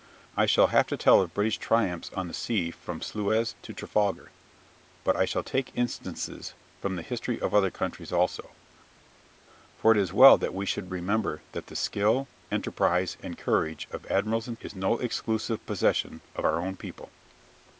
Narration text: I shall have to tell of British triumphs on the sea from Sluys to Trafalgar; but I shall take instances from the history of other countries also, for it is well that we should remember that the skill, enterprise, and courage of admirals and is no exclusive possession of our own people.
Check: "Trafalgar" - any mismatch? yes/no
no